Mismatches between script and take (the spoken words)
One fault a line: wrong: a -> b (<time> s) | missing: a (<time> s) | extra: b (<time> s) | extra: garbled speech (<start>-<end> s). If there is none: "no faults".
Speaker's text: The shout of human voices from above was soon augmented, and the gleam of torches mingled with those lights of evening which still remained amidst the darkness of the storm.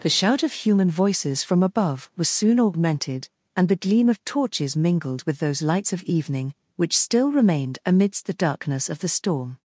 no faults